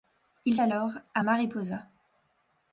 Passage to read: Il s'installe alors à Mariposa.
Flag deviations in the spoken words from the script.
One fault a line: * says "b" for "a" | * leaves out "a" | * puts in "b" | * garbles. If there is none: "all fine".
* leaves out "s'installe"